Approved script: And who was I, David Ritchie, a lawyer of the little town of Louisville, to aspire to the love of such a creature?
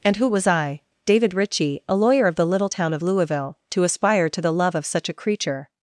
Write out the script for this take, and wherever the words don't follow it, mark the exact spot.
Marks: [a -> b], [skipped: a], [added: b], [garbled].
And who was I, David Ritchie, a lawyer of the little town of Louisville, to aspire to the love of such a creature?